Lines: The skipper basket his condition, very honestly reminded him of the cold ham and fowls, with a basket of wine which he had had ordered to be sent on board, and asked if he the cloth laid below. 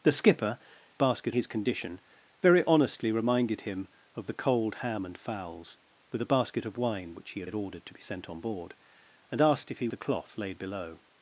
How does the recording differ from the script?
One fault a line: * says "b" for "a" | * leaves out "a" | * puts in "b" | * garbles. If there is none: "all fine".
all fine